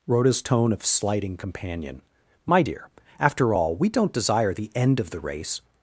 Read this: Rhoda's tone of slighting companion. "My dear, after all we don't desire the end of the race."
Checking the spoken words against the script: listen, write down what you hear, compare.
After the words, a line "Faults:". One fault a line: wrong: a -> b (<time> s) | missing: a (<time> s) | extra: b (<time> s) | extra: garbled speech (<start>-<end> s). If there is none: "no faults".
Rhoda's tone of slighting companion. "My dear, after all we don't desire the end of the race."
Faults:
no faults